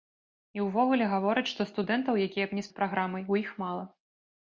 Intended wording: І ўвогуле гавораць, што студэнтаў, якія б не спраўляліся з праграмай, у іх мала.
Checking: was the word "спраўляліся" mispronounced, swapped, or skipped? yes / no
yes